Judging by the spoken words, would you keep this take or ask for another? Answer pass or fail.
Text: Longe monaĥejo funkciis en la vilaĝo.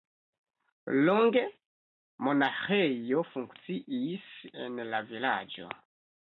pass